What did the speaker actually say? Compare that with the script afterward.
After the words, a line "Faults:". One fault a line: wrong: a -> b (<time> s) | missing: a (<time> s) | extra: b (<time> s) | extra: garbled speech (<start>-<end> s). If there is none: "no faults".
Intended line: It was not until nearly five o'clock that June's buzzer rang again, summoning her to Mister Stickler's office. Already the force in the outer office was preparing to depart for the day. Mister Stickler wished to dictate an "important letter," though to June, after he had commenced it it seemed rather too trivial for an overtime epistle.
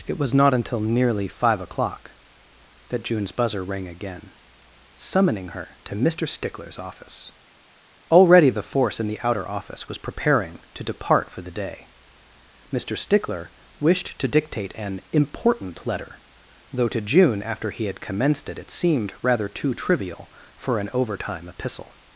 It was not until nearly five o'clock that June's buzzer rang again, summoning her to Mister Stickler's office. Already the force in the outer office was preparing to depart for the day. Mister Stickler wished to dictate an "important letter," though to June, after he had commenced it it seemed rather too trivial for an overtime epistle.
Faults:
no faults